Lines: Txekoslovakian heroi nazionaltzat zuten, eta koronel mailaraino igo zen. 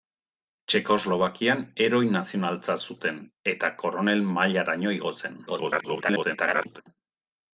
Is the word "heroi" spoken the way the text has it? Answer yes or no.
yes